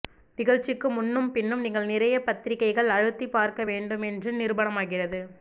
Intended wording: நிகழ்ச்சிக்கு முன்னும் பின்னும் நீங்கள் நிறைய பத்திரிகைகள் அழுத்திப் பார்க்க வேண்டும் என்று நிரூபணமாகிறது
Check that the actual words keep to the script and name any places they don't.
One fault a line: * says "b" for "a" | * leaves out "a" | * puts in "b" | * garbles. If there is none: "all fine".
all fine